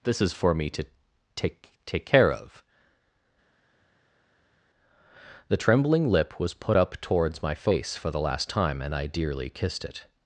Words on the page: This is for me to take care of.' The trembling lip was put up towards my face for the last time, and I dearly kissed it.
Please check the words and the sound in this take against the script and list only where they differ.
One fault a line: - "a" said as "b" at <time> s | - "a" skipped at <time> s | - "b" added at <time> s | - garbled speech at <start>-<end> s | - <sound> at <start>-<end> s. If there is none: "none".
- "take" added at 1.9 s